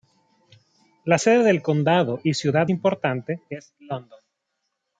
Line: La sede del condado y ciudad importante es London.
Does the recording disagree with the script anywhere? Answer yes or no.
no